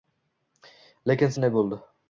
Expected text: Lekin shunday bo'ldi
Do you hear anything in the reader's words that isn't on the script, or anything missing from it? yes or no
no